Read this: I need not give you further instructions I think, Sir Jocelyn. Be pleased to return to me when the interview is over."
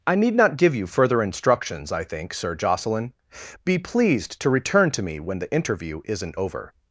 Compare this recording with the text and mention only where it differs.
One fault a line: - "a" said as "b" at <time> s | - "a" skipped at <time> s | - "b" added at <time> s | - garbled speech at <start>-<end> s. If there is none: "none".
- "is" said as "isn't" at 6.0 s